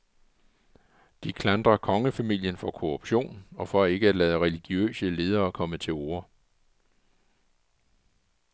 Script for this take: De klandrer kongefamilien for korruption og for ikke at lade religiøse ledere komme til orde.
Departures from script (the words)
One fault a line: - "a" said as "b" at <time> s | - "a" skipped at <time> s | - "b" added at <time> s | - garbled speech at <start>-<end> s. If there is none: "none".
none